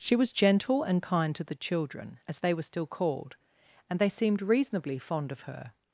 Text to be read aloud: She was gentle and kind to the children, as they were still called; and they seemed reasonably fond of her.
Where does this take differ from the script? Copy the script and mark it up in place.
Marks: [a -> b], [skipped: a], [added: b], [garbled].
She was gentle and kind to the children, as they were still called; and they seemed reasonably fond of her.